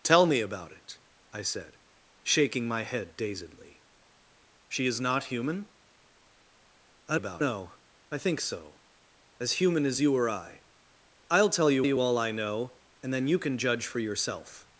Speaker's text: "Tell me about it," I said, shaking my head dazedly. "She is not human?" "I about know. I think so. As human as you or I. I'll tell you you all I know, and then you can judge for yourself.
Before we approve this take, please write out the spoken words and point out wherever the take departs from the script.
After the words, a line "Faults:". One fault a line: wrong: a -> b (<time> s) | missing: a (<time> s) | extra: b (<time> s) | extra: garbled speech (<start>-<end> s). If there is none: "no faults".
"Tell me about it," I said, shaking my head dazedly. "She is not human?" "I about know. I think so. As human as you or I. I'll tell you you all I know, and then you can judge for yourself.
Faults:
no faults